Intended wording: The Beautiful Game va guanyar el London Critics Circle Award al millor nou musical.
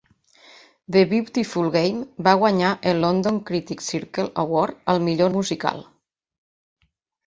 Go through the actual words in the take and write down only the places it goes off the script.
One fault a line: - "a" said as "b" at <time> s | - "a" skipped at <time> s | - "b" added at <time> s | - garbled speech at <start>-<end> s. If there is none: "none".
- "nou" skipped at 5.3 s